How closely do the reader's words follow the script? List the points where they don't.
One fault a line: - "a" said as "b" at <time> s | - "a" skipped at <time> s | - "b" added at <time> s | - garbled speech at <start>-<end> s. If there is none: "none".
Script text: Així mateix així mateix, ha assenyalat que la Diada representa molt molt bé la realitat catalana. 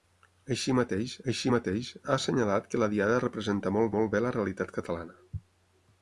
none